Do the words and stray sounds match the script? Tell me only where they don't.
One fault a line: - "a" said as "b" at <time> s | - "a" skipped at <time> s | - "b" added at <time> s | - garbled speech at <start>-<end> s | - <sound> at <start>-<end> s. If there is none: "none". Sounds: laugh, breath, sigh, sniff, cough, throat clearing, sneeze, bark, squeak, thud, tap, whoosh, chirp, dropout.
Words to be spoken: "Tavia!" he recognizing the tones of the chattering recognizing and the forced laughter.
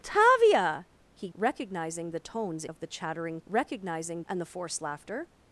none